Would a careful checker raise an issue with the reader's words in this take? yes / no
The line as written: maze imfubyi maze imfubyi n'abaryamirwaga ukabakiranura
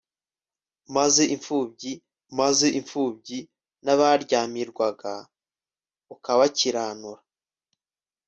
no